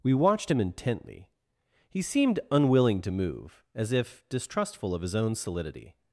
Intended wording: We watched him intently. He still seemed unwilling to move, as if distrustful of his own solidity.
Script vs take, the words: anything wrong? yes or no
yes